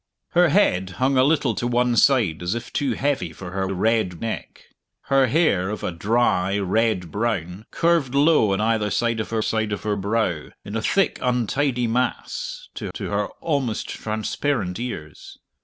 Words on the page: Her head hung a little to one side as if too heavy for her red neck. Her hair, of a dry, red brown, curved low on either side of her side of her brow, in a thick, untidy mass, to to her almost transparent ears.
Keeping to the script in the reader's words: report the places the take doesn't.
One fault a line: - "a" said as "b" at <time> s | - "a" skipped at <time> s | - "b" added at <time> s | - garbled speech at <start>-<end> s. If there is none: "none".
none